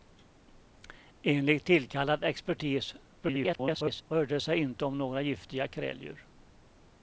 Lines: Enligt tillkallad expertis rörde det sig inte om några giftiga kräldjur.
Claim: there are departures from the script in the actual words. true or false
true